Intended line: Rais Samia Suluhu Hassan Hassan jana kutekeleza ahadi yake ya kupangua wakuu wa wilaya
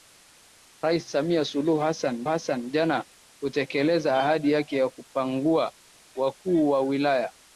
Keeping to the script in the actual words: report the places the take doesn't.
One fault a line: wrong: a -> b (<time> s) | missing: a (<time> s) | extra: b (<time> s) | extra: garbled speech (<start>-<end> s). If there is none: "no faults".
no faults